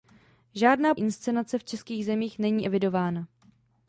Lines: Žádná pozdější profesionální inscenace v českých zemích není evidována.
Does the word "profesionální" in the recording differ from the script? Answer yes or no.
yes